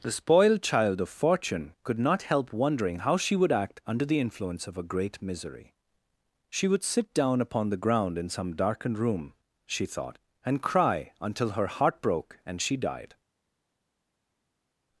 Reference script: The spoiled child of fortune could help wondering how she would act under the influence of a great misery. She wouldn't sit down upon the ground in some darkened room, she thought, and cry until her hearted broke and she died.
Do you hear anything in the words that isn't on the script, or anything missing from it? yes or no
yes